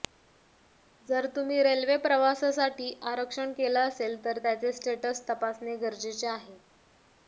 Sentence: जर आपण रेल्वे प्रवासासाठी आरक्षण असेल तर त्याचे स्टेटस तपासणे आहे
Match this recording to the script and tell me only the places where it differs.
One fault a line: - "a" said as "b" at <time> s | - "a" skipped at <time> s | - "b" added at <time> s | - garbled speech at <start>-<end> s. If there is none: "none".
- "आपण" said as "तुम्ही" at 1.4 s
- "केलं" added at 3.5 s
- "गरजेचे" added at 5.8 s